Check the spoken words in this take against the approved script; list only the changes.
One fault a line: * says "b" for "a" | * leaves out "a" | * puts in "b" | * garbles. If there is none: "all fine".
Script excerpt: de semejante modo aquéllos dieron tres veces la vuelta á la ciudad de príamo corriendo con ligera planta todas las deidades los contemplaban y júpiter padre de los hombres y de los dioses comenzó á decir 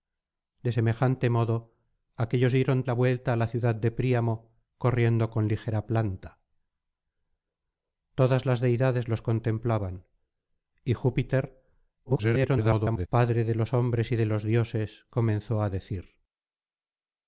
* leaves out "tres veces"
* garbles